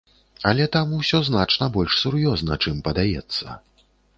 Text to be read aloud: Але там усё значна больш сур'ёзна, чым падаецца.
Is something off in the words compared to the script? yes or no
no